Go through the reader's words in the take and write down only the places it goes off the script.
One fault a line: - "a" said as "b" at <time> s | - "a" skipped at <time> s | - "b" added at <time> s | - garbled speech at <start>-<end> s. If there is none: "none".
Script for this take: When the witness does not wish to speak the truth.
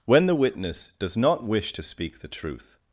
none